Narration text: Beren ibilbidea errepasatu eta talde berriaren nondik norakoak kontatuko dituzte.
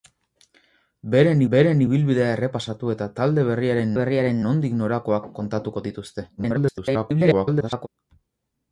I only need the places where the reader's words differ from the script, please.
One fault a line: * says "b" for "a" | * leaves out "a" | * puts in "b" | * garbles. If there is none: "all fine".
* puts in "beren"
* puts in "berriaren"
* garbles